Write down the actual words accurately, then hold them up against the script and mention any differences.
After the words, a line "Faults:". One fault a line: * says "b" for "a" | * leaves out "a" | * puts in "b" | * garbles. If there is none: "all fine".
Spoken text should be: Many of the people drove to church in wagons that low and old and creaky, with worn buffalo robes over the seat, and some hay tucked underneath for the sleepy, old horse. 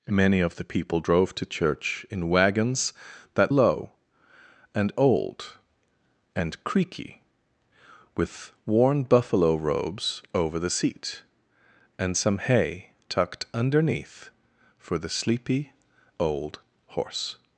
Many of the people drove to church in wagons that low and old and creaky, with worn buffalo robes over the seat, and some hay tucked underneath for the sleepy, old horse.
Faults:
all fine